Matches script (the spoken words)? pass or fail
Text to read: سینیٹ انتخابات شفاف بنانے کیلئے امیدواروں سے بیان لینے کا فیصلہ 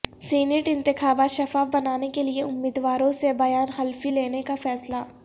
fail